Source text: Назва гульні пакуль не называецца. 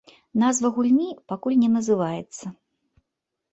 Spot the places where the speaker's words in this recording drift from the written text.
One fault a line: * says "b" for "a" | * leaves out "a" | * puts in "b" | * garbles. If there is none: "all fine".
all fine